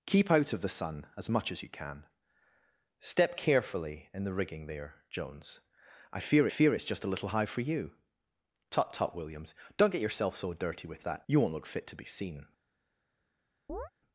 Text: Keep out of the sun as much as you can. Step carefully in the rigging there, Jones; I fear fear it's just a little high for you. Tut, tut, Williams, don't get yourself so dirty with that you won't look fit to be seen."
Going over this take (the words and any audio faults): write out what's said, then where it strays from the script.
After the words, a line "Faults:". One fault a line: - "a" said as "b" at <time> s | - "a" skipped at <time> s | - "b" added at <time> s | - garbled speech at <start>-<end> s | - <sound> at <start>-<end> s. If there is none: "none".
Keep out of the sun as much as you can. Step carefully in the rigging there, Jones; I fear fear it's just a little high for you. Tut, tut, Williams, don't get yourself so dirty with that you won't look fit to be seen."
Faults:
- chirp at 13.7-13.9 s